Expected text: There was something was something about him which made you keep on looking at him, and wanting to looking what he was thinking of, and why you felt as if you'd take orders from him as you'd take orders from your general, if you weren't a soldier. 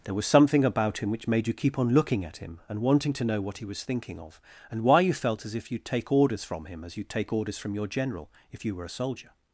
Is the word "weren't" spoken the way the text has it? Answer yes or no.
no